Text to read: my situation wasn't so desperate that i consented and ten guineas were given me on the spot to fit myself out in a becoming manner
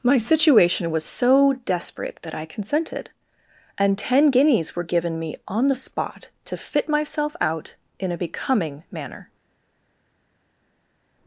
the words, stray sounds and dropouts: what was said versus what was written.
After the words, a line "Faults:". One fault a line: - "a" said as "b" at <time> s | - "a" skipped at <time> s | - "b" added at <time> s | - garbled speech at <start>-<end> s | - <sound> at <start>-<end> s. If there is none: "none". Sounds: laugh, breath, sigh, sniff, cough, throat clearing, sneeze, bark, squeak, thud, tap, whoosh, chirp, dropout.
my situation was so desperate that i consented and ten guineas were given me on the spot to fit myself out in a becoming manner
Faults:
- "wasn't" said as "was" at 0.9 s